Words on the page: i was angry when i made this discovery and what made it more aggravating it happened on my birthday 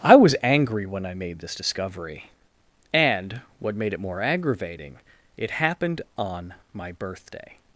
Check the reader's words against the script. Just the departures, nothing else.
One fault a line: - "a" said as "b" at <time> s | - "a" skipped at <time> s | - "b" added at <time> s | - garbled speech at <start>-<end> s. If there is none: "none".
none